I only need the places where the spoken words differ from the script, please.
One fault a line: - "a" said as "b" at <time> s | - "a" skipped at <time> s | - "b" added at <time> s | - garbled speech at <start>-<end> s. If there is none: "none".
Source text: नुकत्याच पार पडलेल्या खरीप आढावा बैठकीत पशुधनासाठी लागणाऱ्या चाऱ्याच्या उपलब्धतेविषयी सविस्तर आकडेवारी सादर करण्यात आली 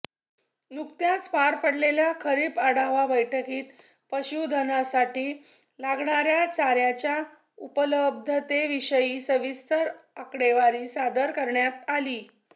none